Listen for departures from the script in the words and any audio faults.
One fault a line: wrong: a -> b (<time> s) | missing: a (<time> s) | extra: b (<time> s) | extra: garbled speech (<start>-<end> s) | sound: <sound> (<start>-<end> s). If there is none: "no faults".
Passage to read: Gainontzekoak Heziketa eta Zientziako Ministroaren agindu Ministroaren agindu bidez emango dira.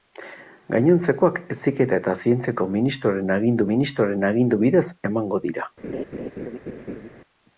sound: laugh (5.8-7.1 s)